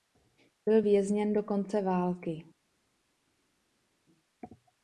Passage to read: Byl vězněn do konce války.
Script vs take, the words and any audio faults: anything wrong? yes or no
no